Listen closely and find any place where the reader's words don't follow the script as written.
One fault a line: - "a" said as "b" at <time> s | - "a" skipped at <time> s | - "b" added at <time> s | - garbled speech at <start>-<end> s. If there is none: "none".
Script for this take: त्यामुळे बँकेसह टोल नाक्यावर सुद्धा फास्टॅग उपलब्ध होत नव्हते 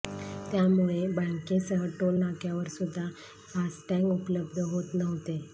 none